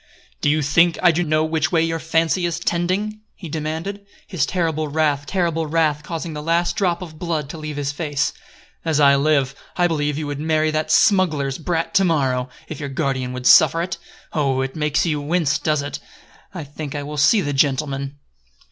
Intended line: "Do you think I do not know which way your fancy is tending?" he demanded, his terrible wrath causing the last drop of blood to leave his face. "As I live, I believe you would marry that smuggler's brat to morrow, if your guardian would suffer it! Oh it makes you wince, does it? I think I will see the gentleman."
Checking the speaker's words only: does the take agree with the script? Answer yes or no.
no